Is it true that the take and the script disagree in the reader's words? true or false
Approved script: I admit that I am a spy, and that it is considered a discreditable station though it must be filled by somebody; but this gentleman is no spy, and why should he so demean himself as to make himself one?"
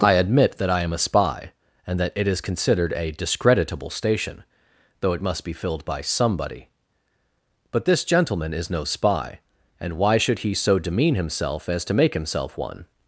false